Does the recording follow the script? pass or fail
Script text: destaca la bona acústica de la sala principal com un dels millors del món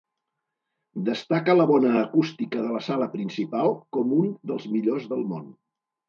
pass